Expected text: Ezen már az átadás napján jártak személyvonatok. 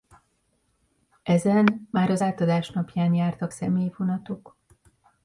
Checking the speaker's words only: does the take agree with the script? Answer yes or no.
yes